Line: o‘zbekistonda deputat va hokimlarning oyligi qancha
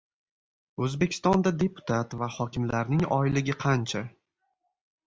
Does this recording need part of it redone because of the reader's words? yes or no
no